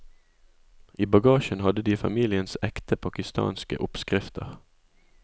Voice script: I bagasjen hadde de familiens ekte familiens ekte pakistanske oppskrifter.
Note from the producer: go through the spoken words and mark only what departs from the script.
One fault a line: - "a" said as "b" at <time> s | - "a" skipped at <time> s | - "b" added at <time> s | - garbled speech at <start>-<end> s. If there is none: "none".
- "familiens ekte" skipped at 3.0 s